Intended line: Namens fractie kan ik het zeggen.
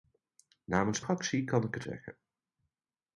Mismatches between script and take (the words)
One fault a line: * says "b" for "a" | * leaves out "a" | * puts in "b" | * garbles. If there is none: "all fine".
all fine